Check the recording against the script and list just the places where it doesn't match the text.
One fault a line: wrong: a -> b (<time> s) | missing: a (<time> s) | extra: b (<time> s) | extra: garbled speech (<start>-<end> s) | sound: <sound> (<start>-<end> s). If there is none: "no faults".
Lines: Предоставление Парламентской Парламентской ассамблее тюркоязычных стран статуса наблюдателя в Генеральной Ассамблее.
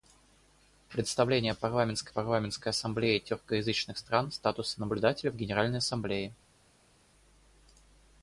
no faults